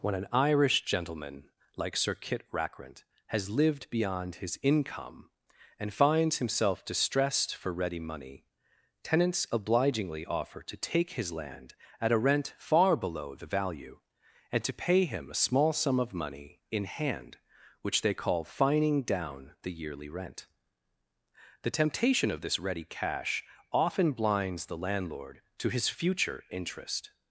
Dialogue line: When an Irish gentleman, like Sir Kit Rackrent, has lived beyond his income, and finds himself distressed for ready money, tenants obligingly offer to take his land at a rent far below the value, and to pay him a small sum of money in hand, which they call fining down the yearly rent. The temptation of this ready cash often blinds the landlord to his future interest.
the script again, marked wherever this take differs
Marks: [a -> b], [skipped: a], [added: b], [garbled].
When an Irish gentleman, like Sir Kit Rackrent, has lived beyond his income, and finds himself distressed for ready money, tenants obligingly offer to take his land at a rent far below the value, and to pay him a small sum of money in hand, which they call fining down the yearly rent. The temptation of this ready cash often blinds the landlord to his future interest.